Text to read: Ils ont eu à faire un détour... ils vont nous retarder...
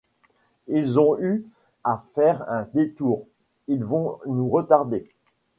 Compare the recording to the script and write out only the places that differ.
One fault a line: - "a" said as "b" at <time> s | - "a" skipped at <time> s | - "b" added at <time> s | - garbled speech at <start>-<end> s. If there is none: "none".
none